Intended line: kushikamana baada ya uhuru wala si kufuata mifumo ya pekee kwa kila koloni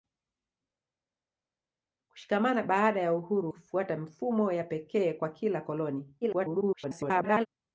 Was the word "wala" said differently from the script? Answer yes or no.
yes